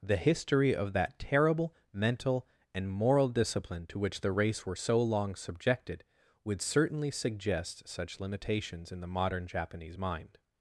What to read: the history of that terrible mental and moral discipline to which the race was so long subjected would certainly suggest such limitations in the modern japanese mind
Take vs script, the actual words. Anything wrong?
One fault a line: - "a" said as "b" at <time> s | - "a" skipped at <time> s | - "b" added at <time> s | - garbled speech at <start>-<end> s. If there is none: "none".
- "was" said as "were" at 4.6 s